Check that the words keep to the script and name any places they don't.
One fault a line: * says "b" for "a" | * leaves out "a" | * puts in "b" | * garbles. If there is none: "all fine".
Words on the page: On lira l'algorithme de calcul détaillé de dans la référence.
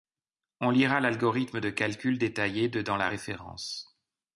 all fine